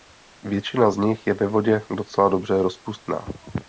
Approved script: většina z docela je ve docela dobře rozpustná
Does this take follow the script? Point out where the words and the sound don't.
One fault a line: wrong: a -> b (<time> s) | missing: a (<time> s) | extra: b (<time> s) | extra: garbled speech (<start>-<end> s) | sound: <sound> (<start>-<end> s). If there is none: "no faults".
wrong: docela -> nich (1.0 s)
extra: vodě (1.5 s)